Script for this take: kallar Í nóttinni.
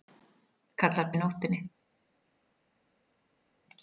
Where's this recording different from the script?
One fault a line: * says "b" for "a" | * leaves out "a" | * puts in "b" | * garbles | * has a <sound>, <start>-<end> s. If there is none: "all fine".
all fine